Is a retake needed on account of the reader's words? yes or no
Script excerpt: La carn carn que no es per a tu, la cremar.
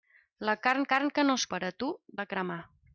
no